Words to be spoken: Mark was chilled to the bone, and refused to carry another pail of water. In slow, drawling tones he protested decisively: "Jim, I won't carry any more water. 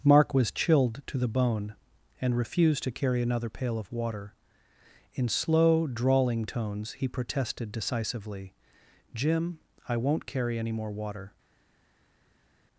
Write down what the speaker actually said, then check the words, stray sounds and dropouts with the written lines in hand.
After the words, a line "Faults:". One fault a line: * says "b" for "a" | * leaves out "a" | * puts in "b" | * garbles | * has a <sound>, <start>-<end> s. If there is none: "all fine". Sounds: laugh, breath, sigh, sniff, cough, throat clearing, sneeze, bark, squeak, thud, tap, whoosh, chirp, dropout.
Mark was chilled to the bone, and refused to carry another pail of water. In slow, drawling tones he protested decisively: "Jim, I won't carry any more water.
Faults:
all fine